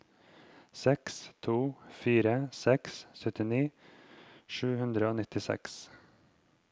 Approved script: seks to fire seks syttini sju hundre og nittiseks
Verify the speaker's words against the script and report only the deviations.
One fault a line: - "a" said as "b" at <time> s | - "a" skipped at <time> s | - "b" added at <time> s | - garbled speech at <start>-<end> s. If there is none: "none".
none